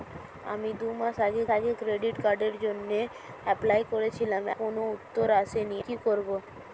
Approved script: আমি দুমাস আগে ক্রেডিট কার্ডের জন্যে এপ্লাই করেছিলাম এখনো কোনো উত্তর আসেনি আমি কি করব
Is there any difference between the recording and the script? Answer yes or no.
yes